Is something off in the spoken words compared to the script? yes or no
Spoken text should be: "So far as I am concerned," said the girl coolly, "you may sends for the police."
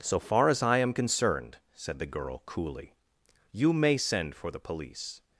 yes